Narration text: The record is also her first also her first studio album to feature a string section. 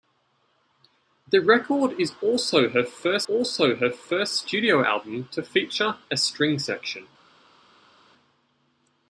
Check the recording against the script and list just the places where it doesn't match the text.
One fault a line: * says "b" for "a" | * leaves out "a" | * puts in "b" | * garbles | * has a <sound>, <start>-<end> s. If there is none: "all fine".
all fine